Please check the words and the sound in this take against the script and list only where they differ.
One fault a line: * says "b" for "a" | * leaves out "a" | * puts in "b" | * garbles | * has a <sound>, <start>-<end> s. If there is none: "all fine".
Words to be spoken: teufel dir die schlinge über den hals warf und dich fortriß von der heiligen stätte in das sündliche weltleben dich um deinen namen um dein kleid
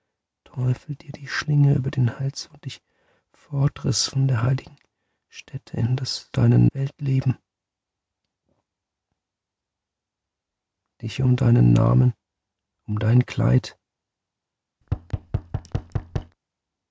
* leaves out "warf"
* says "deinen" for "sündliche"
* has a thud, 14.8-16.4 s